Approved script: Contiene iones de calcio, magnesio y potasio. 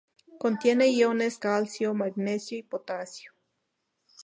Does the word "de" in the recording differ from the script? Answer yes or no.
yes